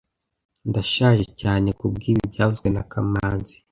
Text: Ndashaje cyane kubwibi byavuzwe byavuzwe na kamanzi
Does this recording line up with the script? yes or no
no